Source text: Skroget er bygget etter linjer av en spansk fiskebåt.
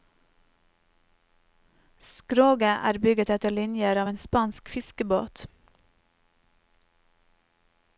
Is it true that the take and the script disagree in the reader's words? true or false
false